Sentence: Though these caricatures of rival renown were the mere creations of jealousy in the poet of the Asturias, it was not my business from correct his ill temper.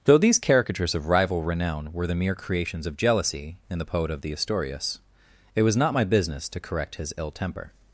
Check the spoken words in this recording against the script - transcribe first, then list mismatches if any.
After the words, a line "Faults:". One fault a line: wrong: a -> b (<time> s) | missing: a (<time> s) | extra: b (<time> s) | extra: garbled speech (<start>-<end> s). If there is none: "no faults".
Though these caricatures of rival renown were the mere creations of jealousy in the poet of the Asturias, it was not my business to correct his ill temper.
Faults:
wrong: from -> to (6.5 s)